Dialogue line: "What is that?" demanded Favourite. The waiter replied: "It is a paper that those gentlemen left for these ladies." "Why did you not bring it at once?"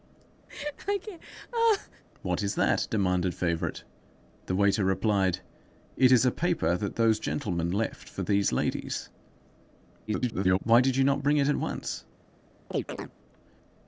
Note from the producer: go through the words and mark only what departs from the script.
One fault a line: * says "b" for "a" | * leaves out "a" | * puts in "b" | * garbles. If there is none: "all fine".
* garbles